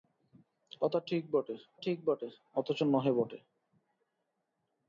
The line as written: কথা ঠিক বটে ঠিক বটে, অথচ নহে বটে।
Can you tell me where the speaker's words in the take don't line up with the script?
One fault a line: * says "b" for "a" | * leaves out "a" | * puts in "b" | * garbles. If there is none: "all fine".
all fine